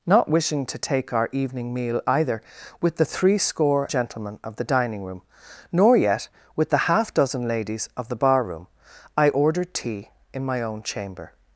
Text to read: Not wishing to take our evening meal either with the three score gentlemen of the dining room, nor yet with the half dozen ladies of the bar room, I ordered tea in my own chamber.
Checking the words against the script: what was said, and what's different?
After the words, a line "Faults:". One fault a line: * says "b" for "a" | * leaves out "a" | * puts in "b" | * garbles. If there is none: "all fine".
Not wishing to take our evening meal either with the three score gentlemen of the dining room, nor yet with the half dozen ladies of the bar room, I ordered tea in my own chamber.
Faults:
all fine